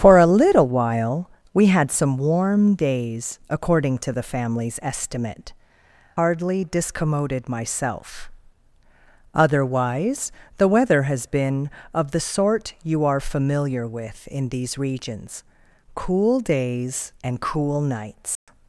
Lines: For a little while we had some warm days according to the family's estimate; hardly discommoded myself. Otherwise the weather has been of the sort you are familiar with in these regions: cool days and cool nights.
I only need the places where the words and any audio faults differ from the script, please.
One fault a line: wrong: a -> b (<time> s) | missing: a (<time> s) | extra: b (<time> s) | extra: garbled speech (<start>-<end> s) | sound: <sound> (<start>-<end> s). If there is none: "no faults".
sound: dropout (18.4-18.5 s)